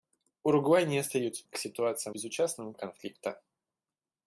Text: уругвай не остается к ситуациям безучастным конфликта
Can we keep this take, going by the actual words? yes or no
yes